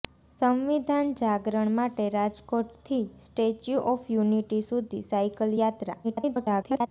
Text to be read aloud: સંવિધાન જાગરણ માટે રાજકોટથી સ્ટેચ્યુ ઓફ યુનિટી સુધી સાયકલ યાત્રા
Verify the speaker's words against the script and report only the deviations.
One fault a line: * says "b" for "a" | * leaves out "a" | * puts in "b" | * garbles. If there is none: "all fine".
* garbles